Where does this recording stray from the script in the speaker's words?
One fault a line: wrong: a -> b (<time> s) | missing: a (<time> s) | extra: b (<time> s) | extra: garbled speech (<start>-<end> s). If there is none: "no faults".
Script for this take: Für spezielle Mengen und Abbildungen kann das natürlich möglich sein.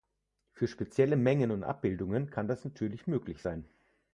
no faults